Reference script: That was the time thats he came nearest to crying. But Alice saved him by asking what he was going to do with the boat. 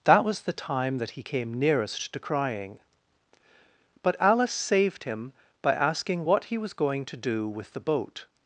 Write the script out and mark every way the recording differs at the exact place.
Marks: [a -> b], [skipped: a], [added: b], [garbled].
That was the time [thats -> that] he came nearest to crying. But Alice saved him by asking what he was going to do with the boat.